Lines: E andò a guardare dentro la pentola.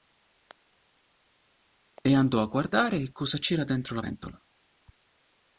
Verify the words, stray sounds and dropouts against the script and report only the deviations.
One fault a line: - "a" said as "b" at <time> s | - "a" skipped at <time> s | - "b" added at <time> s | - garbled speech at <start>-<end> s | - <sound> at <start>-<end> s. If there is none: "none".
- "cosa c'era" added at 3.1 s